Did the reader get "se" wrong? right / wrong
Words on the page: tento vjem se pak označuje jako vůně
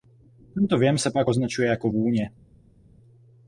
right